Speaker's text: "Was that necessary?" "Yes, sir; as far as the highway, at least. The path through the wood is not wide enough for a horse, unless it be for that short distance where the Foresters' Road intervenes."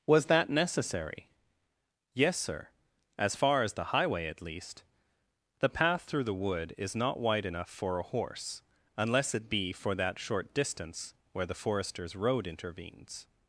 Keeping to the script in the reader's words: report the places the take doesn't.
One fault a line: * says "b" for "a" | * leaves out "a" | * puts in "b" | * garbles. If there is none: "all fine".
all fine